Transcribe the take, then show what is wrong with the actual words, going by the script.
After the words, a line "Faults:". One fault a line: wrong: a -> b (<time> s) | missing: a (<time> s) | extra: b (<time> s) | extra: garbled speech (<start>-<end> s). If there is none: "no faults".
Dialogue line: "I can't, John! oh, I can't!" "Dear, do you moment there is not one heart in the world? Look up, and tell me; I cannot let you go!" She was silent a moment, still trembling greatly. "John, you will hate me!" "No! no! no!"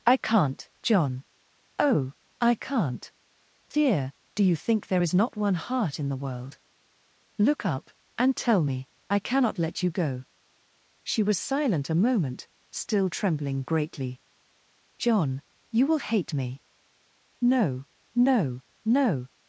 "I can't, John! oh, I can't!" "Dear, do you think there is not one heart in the world? Look up, and tell me; I cannot let you go!" She was silent a moment, still trembling greatly. "John, you will hate me!" "No! no! no!"
Faults:
wrong: moment -> think (4.5 s)